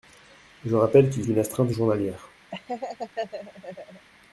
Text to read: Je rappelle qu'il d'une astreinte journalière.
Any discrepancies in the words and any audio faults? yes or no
yes